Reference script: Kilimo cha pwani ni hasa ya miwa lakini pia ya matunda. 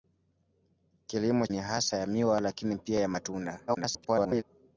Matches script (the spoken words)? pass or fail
fail